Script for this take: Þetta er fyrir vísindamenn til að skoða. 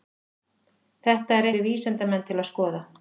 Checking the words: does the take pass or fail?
pass